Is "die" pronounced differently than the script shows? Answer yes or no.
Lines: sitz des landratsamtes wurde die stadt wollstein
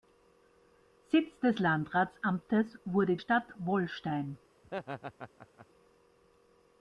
yes